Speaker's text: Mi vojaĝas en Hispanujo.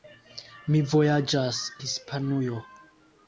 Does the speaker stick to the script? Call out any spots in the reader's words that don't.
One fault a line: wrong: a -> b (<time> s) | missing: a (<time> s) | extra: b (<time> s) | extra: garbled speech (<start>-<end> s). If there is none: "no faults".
missing: en (1.6 s)